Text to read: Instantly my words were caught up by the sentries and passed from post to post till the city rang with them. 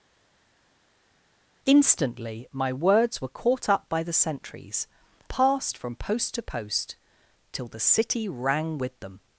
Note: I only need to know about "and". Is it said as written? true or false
false